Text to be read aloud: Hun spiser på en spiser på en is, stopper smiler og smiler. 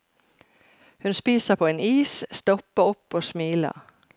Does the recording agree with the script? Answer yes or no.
no